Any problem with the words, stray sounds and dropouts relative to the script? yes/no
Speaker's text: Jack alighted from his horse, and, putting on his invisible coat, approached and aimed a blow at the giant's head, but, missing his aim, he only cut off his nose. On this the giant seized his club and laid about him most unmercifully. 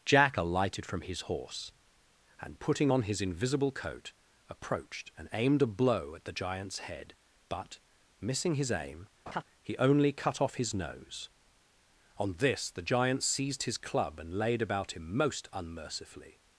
yes